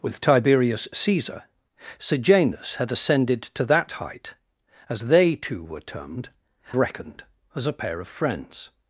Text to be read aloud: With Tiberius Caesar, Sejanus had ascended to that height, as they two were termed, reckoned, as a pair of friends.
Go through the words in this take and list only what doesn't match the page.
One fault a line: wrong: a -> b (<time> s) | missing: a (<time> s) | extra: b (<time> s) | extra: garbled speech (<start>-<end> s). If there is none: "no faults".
no faults